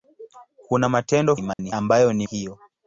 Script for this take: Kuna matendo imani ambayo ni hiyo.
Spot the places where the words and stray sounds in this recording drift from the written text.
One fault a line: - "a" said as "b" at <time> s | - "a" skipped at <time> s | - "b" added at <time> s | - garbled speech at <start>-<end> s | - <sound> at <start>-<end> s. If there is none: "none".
- dropout at 1.5-1.6 s